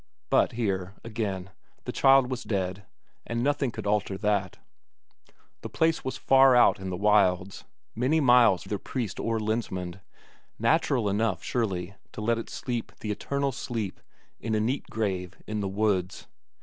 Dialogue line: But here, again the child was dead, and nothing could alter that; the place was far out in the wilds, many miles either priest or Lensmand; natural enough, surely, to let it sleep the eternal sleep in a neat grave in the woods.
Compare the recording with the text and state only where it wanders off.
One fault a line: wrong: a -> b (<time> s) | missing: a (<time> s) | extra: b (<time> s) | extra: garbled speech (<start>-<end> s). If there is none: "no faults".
no faults